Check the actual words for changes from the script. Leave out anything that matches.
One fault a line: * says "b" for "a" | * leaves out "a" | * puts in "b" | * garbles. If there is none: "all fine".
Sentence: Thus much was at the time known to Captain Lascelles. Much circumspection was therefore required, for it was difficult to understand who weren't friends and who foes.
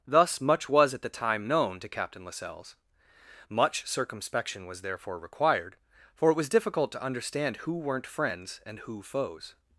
all fine